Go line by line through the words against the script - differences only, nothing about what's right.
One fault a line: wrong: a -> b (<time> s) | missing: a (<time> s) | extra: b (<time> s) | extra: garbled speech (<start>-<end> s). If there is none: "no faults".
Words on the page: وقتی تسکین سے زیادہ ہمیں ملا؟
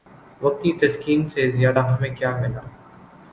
extra: کیا (2.2 s)